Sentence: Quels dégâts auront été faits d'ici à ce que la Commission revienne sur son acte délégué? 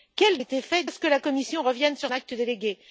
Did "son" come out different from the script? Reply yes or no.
yes